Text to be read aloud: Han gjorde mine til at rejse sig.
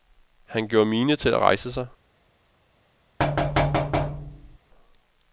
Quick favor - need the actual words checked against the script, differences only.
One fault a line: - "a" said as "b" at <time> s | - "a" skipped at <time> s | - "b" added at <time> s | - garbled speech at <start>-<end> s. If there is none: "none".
none